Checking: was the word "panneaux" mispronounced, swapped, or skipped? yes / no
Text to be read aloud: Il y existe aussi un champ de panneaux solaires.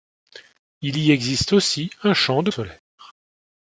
yes